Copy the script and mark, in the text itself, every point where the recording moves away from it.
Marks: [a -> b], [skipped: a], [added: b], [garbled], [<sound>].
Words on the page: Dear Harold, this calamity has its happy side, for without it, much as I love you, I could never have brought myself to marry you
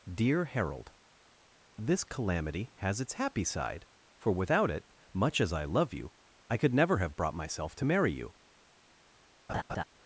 Dear Harold, this calamity has its happy side, for without it, much as I love you, I could never have brought myself to marry you [laugh]